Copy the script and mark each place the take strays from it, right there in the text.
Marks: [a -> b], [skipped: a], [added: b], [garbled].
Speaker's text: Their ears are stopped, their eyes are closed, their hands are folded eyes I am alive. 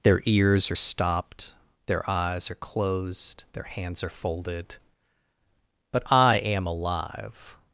Their ears are stopped, their eyes are closed, their hands are folded [eyes -> but] I am alive.